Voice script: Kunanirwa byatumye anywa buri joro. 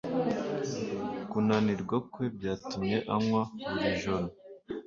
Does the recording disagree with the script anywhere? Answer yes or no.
yes